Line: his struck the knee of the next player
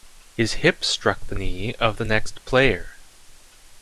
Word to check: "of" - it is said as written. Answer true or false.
true